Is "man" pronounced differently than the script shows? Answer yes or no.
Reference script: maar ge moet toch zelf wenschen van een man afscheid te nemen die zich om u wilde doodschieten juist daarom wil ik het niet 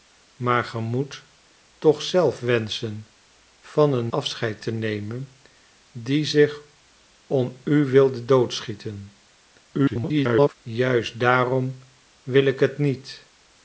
yes